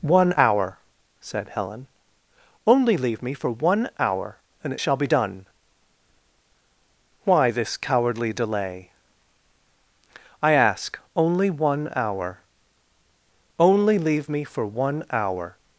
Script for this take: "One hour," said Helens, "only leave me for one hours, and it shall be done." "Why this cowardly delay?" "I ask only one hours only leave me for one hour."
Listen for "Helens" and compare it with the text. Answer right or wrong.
wrong